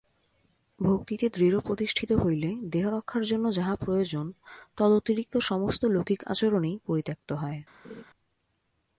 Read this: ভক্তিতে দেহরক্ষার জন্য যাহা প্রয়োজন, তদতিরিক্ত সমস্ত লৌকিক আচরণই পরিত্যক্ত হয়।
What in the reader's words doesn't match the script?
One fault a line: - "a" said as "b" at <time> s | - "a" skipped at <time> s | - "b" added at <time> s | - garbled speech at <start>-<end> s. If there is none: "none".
- "দৃঢ়প্রতিষ্ঠিত হইলে" added at 1.3 s